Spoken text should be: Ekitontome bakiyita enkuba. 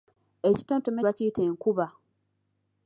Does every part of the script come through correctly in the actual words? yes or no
yes